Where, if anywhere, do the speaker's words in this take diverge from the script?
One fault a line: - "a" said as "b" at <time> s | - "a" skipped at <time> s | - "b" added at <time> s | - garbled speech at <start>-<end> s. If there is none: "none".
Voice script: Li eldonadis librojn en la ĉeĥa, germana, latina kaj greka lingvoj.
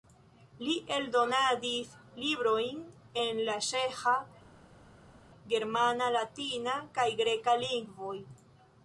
none